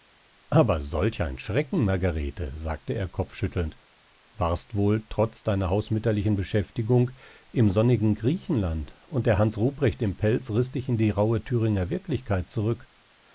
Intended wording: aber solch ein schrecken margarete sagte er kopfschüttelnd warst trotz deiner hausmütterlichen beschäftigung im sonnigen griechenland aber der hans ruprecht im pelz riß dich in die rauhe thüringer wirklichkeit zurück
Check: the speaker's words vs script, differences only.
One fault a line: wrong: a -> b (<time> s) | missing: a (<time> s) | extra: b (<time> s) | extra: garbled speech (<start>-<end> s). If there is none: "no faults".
extra: wohl (4.7 s)
wrong: aber -> und (9.1 s)